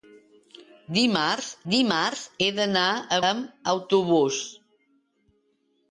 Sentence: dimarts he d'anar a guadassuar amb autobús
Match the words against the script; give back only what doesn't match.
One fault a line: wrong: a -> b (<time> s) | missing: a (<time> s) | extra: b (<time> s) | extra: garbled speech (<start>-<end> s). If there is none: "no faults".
extra: dimarts (1.7 s)
missing: guadassuar (3.2 s)